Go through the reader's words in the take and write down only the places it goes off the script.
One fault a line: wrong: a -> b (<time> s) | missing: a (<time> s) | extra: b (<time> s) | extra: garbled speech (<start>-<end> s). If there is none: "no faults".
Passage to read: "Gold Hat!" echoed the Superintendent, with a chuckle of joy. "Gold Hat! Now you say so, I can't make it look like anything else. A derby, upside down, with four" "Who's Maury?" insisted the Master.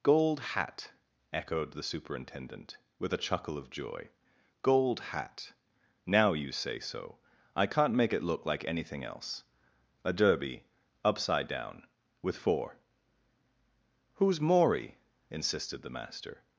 no faults